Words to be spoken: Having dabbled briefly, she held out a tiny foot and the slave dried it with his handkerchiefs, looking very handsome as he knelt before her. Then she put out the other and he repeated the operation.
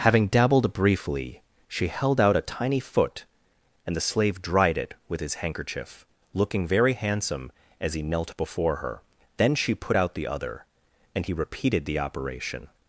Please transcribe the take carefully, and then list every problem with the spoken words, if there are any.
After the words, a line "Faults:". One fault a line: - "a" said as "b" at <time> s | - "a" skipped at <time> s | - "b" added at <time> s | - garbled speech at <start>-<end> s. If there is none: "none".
Having dabbled briefly, she held out a tiny foot and the slave dried it with his handkerchief, looking very handsome as he knelt before her. Then she put out the other and he repeated the operation.
Faults:
- "handkerchiefs" said as "handkerchief" at 5.5 s